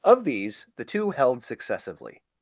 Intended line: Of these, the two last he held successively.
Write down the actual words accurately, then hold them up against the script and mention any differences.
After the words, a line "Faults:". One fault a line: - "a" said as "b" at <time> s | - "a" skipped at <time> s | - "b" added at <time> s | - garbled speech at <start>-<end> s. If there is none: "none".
Of these, the two held successively.
Faults:
- "last he" skipped at 1.1 s